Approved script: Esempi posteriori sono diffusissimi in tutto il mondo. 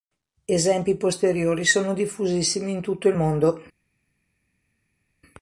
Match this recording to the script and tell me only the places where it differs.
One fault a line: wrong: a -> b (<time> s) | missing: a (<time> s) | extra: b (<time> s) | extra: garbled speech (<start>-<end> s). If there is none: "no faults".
no faults